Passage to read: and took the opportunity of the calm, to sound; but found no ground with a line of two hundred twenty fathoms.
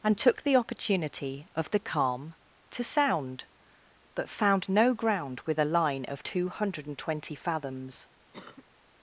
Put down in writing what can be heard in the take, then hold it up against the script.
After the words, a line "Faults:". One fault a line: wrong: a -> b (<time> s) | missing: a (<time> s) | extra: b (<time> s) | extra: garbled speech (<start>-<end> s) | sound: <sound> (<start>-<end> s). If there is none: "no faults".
and took the opportunity of the calm, to sound; but found no ground with a line of two hundred and twenty fathoms.
Faults:
extra: and (6.9 s)
sound: cough (8.3-8.6 s)